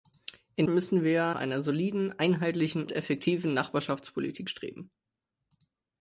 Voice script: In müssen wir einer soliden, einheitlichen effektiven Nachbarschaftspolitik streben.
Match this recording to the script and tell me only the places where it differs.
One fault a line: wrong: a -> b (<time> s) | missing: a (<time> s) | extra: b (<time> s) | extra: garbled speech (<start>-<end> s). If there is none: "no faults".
no faults